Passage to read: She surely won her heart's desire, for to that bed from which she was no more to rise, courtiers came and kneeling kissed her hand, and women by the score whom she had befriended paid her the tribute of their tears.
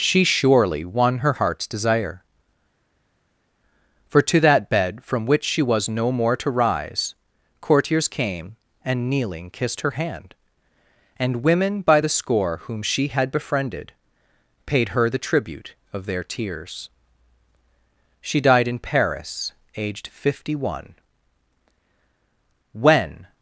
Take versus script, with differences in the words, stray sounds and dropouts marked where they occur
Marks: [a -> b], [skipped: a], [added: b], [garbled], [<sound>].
She surely won her heart's desire, for to that bed from which she was no more to rise, courtiers came and kneeling kissed her hand, and women by the score whom she had befriended paid her the tribute of their tears. [added: She died in Paris aged fifty one When]